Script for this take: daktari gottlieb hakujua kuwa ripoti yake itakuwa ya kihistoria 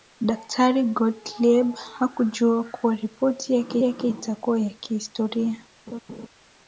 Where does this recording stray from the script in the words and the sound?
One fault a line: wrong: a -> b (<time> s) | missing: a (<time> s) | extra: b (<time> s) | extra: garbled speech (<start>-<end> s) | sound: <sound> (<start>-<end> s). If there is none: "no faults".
extra: yake (3.8 s)
sound: laugh (5.9-6.3 s)